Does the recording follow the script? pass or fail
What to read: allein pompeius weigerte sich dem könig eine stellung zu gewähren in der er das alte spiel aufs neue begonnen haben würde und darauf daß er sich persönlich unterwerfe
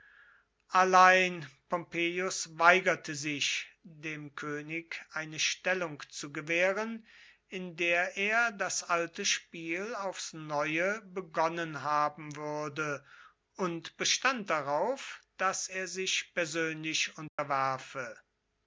fail